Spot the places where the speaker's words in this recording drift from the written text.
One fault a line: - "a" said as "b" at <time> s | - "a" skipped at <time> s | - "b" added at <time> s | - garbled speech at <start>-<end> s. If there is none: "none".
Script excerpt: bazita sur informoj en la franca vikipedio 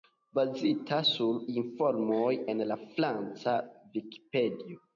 none